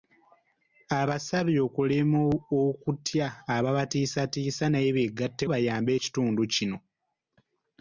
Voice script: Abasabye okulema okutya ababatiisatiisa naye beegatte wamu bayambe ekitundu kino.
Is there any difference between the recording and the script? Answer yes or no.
yes